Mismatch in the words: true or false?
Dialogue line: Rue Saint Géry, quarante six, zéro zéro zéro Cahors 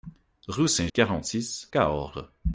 true